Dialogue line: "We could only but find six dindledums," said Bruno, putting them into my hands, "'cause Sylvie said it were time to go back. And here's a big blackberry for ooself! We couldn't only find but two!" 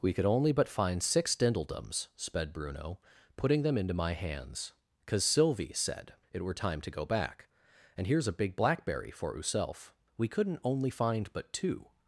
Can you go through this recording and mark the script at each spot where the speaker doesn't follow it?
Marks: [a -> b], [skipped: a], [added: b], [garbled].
"We could only but find six dindledums," [said -> sped] Bruno, putting them into my hands, "'cause Sylvie said it were time to go back. And here's a big blackberry for ooself! We couldn't only find but two!"